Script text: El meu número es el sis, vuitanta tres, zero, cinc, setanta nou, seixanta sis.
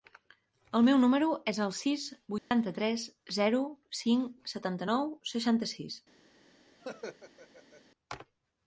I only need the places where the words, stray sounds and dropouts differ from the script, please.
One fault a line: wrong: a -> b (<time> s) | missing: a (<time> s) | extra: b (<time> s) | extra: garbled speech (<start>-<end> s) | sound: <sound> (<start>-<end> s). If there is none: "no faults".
sound: dropout (2.4-2.5 s)
sound: laugh (6.8-7.8 s)